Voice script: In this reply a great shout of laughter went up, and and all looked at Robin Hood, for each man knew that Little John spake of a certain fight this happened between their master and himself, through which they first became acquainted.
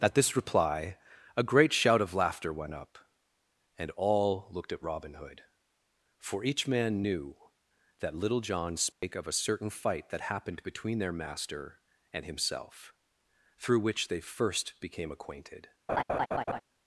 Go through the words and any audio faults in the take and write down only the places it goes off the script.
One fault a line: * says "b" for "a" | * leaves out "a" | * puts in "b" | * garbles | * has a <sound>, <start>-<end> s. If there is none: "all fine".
* says "At" for "In"
* leaves out "and"
* has a dropout, 8.9-9.0 s
* says "that" for "this"
* has a laugh, 15.9-16.6 s